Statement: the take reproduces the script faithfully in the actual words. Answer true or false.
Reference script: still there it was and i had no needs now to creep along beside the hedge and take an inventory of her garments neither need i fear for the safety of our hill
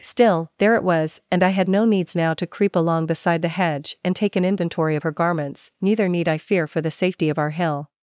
true